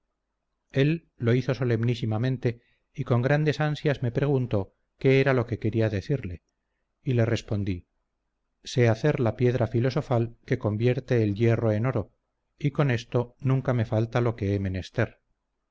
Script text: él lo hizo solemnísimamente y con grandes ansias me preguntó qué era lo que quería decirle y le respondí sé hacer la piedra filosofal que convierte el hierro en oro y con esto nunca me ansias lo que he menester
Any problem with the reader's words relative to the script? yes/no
yes